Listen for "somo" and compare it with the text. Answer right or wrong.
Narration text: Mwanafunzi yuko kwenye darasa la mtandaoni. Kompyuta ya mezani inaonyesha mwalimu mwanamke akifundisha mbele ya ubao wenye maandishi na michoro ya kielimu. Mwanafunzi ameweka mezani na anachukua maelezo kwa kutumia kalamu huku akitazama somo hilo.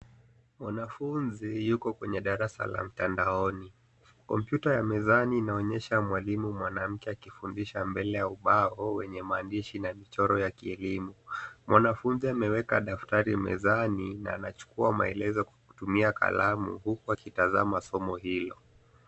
right